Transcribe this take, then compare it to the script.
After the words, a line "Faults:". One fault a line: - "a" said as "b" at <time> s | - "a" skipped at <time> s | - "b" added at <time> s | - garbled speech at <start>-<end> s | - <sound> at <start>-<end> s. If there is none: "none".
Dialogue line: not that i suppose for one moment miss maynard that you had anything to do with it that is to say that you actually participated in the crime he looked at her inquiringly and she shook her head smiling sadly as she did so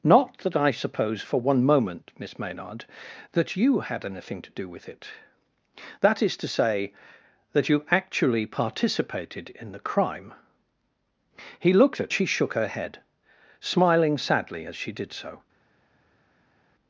not that i suppose for one moment miss maynard that you had anything to do with it that is to say that you actually participated in the crime he looked at she shook her head smiling sadly as she did so
Faults:
- "her inquiringly and" skipped at 12.1 s